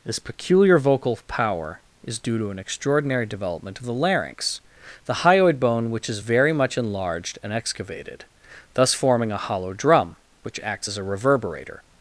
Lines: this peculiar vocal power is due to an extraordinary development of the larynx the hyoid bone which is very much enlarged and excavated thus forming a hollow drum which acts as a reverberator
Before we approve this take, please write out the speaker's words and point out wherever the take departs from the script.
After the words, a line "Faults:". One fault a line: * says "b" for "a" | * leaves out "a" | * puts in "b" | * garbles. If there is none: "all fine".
this peculiar vocal power is due to an extraordinary development of the larynx the hyoid bone which is very much enlarged and excavated thus forming a hollow drum which acts as a reverberator
Faults:
all fine